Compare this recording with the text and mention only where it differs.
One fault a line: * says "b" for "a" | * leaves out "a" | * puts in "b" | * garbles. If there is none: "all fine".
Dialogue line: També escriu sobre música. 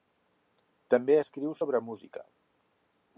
all fine